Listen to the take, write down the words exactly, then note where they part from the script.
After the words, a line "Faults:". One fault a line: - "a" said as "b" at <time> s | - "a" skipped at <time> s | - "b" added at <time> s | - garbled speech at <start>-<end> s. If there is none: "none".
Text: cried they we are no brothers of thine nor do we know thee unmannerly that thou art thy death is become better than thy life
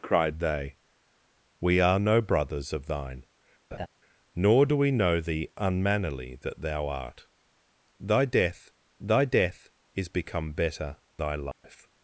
cried they we are no brothers of thine nor do we know thee unmannerly that thou art thy death thy death is become better thy life
Faults:
- "thy death" added at 9.0 s
- "than" skipped at 11.0 s